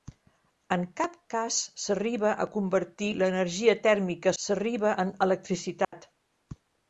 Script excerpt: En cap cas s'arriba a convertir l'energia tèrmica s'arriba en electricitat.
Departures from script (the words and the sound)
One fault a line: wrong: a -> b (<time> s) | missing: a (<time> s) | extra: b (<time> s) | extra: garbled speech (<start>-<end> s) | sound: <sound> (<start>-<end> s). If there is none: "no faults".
sound: dropout (5.8-5.9 s)